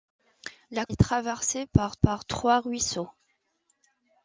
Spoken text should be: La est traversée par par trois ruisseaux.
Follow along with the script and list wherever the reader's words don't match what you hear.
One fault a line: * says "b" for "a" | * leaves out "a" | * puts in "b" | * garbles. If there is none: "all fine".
all fine